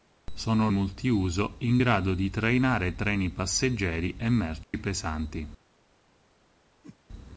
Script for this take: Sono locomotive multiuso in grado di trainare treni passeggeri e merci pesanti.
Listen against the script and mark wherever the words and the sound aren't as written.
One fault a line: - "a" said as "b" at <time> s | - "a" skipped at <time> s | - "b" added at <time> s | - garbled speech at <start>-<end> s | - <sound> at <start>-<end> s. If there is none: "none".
- "locomotive" skipped at 0.7 s
- dropout at 4.6-4.7 s
- whoosh at 6.8-7.0 s